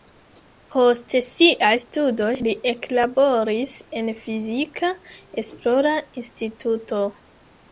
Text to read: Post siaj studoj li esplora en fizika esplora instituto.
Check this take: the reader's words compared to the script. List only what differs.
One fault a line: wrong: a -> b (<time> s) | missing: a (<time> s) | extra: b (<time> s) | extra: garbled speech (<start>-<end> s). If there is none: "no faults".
wrong: esplora -> eklaboris (2.7 s)